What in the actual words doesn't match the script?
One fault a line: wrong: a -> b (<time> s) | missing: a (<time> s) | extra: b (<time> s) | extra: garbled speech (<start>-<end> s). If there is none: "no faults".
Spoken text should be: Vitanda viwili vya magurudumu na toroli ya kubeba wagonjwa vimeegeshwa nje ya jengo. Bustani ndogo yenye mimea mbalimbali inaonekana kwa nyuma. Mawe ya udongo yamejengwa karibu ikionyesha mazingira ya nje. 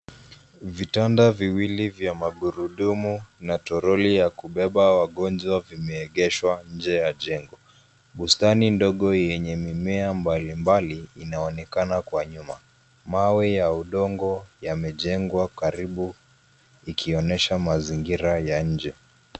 no faults